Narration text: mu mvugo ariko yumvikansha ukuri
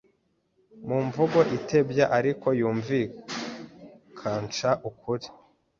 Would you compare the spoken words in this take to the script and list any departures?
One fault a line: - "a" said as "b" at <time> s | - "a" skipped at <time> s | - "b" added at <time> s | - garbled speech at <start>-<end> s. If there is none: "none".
- "itebya" added at 1.6 s